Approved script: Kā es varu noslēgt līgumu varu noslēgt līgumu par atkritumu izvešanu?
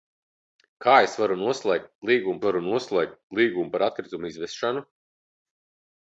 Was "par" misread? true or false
false